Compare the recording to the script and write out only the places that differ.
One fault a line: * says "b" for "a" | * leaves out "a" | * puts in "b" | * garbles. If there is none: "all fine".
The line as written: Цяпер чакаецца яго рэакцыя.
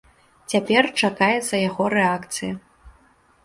all fine